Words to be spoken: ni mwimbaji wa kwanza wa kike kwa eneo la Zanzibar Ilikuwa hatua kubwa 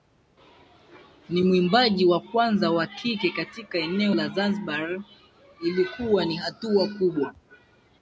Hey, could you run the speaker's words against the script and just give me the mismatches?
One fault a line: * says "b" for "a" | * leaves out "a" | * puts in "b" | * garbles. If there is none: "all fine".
* says "katika" for "kwa"
* puts in "ni"